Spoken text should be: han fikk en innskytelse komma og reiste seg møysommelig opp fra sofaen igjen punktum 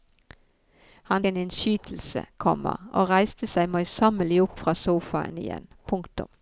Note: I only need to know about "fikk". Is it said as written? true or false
false